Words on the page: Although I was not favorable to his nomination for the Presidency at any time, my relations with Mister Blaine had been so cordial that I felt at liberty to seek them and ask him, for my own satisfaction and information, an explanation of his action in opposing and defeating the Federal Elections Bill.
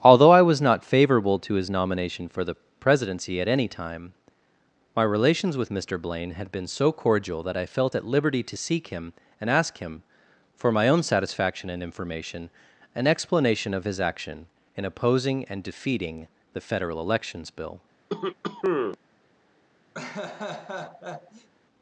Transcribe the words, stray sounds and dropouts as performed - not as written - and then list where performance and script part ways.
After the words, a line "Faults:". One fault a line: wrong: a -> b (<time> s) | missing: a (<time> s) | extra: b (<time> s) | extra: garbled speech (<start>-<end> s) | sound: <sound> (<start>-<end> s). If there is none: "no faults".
Although I was not favorable to his nomination for the Presidency at any time, my relations with Mister Blaine had been so cordial that I felt at liberty to seek him and ask him, for my own satisfaction and information, an explanation of his action in opposing and defeating the Federal Elections Bill.
Faults:
wrong: them -> him (8.9 s)
sound: cough (18.1-19.0 s)
sound: laugh (19.9-21.5 s)